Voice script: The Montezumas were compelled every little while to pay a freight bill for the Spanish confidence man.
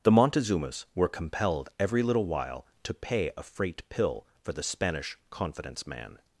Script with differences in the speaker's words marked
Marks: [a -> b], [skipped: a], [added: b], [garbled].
The Montezumas were compelled every little while to pay a freight [bill -> pill] for the Spanish confidence man.